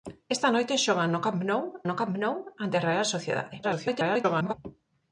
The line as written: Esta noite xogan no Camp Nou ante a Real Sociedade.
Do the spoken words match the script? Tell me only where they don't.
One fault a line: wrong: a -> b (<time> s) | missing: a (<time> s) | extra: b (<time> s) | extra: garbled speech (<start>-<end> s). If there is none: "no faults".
extra: no Camp Nou (1.9 s)
extra: garbled speech (3.6-4.5 s)